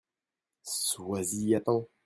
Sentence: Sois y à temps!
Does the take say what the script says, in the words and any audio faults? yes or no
yes